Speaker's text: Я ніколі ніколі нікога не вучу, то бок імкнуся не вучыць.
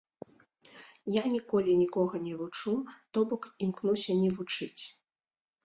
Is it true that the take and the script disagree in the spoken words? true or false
true